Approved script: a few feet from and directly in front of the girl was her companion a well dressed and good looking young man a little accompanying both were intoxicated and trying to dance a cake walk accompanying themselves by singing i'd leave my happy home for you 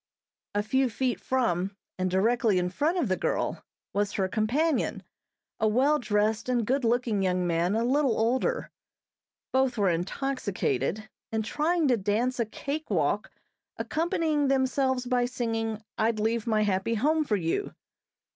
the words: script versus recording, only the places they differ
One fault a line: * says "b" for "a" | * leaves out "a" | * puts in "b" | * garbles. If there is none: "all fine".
* says "older" for "accompanying"